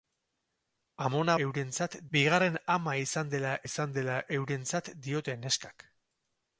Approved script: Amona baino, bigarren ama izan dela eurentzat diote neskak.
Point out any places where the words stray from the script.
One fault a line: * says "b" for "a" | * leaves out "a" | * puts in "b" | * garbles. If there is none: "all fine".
* says "eurentzat" for "baino"
* puts in "izan dela"